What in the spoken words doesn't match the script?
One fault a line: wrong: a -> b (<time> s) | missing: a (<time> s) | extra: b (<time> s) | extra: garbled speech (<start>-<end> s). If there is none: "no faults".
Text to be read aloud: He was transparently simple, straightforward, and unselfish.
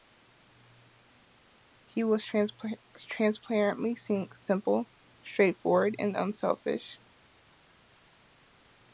no faults